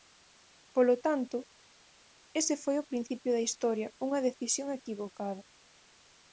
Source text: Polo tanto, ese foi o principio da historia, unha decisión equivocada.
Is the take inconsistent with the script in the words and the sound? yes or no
no